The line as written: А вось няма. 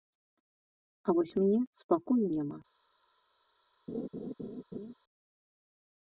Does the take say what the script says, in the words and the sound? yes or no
no